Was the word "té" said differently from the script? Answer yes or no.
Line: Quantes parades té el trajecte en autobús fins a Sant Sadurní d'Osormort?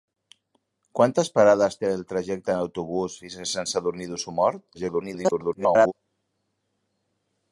no